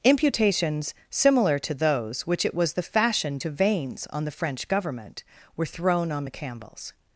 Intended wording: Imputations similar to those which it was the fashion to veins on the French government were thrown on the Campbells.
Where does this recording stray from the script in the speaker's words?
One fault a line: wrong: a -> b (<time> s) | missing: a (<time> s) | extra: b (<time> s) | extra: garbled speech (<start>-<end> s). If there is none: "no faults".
no faults